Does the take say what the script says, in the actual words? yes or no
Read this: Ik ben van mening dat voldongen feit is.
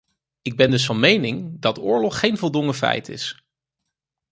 no